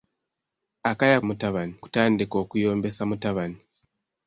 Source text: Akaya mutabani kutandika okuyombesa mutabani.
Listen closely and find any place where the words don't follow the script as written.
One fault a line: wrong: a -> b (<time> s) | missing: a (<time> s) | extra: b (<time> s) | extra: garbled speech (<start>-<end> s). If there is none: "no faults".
no faults